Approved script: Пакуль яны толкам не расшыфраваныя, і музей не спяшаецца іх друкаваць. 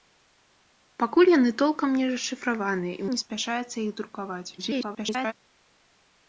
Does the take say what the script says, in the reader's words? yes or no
no